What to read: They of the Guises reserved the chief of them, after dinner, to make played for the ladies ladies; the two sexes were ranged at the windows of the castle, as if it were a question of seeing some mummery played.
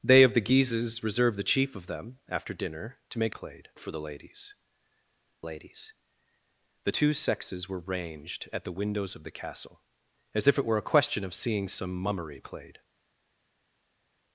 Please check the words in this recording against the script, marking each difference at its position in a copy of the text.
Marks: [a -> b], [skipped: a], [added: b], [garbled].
They of the Guises reserved the chief of them, after dinner, to make played for the ladies ladies; the two sexes were ranged at the windows of the castle, as if it were a question of seeing some mummery played.